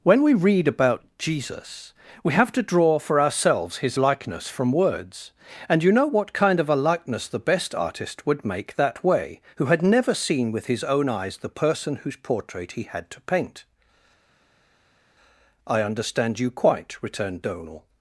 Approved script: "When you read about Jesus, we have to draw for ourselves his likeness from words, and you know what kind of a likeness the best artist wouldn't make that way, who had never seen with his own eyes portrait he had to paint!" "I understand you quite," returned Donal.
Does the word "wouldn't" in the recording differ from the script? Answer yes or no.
yes